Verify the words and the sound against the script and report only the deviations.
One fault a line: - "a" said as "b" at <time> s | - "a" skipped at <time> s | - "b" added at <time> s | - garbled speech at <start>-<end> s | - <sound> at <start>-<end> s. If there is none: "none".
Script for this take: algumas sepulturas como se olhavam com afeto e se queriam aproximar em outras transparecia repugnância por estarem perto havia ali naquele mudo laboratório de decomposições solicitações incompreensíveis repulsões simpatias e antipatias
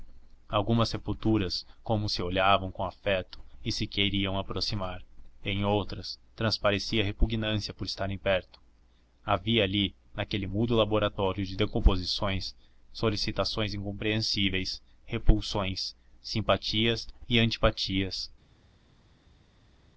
none